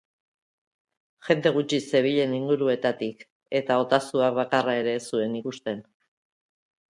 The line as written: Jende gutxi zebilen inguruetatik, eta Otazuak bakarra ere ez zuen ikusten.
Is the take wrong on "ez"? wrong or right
right